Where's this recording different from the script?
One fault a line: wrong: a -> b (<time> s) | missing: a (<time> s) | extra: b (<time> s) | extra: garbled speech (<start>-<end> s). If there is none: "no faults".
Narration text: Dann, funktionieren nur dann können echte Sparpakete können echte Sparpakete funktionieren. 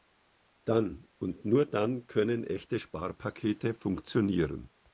wrong: funktionieren -> und (1.2 s)
missing: können echte Sparpakete (3.7 s)